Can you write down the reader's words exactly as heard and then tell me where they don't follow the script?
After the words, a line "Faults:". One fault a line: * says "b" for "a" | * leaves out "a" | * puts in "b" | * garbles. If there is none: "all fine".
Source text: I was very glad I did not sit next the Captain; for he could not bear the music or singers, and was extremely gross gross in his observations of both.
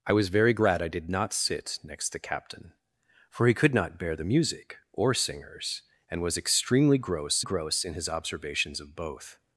I was very glad I did not sit next the Captain; for he could not bear the music or singers, and was extremely gross gross in his observations of both.
Faults:
all fine